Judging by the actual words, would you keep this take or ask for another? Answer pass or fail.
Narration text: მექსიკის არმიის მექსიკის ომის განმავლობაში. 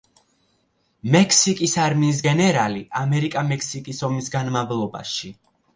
fail